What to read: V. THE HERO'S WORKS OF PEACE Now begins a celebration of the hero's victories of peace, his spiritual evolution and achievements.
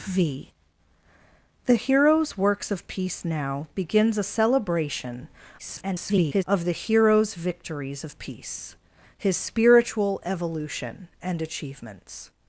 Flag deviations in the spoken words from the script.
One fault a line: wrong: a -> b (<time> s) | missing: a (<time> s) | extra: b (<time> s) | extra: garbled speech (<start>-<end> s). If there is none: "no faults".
extra: garbled speech (5.6-6.4 s)